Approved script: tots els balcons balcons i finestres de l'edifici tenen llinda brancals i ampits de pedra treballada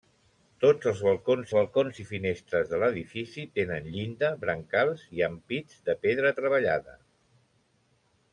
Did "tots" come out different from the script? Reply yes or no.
no